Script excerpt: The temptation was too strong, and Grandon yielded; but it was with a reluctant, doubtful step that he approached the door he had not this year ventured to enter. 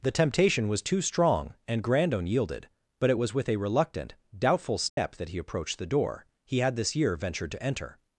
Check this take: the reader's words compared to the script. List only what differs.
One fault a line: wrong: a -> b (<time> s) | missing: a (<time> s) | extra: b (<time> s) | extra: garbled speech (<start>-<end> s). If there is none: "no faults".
missing: not (6.8 s)